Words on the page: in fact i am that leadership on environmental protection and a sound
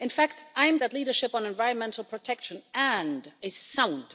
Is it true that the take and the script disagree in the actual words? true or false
false